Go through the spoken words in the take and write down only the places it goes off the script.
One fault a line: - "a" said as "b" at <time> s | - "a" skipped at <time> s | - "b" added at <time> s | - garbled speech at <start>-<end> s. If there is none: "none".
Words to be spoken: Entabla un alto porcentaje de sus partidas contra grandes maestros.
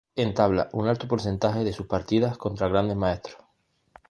none